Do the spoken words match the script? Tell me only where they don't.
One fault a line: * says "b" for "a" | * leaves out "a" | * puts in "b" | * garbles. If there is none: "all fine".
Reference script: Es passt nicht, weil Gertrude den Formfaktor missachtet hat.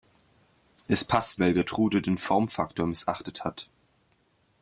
* leaves out "nicht"